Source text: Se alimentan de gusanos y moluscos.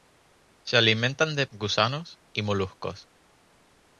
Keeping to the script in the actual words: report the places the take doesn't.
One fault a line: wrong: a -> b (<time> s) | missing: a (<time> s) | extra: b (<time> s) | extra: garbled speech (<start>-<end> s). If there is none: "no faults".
no faults